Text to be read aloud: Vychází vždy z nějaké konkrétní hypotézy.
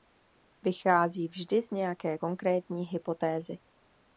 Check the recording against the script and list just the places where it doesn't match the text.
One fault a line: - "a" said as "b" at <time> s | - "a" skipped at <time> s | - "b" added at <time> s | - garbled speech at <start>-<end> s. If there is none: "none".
none